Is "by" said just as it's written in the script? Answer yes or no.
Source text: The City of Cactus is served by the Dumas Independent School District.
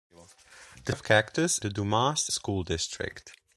no